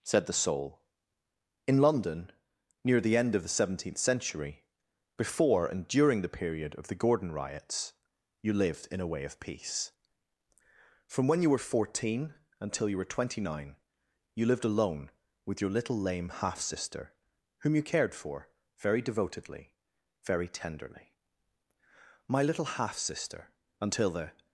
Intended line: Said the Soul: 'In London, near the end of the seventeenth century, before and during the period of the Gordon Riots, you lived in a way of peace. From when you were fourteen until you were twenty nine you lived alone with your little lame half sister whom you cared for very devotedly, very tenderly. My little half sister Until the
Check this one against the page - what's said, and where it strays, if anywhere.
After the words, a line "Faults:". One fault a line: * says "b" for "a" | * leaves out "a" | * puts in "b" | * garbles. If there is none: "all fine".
Said the Soul: 'In London, near the end of the seventeenth century, before and during the period of the Gordon Riots, you lived in a way of peace. From when you were fourteen until you were twenty nine you lived alone with your little lame half sister whom you cared for very devotedly, very tenderly. My little half sister Until the
Faults:
all fine